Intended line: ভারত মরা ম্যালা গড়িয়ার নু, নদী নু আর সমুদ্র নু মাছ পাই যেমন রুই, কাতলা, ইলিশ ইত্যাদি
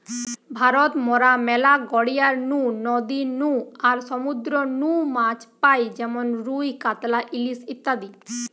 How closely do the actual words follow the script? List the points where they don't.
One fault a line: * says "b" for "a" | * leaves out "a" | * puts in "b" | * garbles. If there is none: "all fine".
all fine